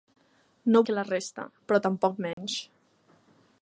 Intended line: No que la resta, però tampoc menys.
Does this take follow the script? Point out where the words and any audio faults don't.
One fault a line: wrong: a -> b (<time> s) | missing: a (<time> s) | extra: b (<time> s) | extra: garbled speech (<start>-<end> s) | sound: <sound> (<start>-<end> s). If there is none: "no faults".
sound: dropout (2.3-2.4 s)